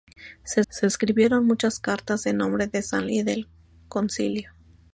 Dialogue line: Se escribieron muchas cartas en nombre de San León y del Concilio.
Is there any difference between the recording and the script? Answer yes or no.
yes